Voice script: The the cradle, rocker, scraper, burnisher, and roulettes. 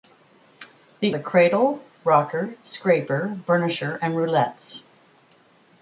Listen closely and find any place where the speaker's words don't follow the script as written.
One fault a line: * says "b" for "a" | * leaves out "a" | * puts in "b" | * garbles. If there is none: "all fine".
all fine